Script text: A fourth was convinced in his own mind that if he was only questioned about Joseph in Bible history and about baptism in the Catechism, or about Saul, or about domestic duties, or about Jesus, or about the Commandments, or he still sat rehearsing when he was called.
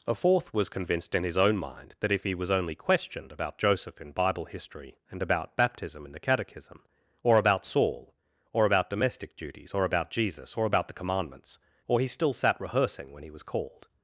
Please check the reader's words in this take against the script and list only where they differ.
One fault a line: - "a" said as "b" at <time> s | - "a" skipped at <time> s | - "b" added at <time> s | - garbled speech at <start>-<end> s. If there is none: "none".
none